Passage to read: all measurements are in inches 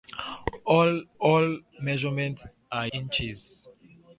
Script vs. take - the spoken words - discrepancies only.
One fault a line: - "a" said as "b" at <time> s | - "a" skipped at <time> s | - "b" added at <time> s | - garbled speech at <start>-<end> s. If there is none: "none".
- "all" added at 1.2 s
- "in" skipped at 2.9 s